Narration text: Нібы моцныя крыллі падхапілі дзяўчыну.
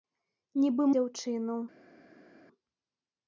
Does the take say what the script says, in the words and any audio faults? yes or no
no